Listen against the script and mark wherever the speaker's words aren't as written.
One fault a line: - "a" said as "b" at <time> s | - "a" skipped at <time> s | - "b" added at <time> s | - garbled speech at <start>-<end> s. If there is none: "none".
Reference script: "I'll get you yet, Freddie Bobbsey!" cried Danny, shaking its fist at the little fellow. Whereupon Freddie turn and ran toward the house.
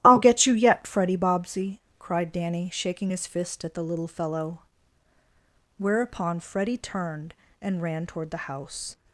- "its" said as "his" at 3.1 s
- "turn" said as "turned" at 6.8 s